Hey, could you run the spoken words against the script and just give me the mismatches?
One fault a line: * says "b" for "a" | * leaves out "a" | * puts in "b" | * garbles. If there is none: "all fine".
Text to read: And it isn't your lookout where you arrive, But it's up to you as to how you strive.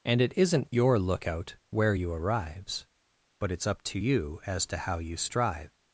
* says "arrives" for "arrive"